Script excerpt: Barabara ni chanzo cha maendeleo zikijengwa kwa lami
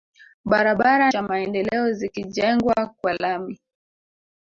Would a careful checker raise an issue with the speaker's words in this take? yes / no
yes